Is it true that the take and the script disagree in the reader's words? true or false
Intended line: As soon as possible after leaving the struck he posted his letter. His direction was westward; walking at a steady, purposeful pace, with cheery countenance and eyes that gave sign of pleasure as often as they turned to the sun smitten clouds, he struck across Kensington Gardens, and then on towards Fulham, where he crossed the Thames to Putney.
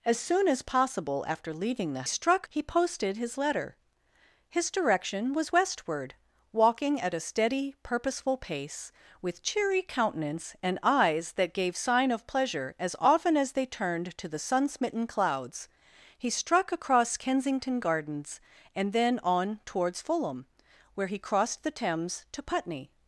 false